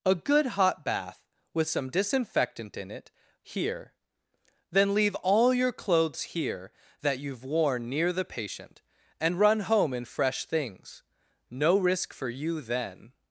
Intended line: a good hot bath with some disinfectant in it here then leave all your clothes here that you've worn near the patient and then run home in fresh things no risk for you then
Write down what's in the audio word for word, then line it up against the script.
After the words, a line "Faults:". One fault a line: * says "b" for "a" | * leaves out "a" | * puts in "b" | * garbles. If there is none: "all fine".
a good hot bath with some disinfectant in it here then leave all your clothes here that you've worn near the patient and run home in fresh things no risk for you then
Faults:
* leaves out "then"